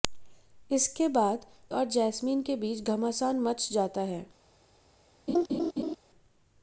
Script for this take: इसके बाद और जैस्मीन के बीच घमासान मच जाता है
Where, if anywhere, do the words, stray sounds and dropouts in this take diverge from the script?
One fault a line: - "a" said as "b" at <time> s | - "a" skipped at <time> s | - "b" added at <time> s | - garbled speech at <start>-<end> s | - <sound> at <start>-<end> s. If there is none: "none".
- laugh at 5.3-6.0 s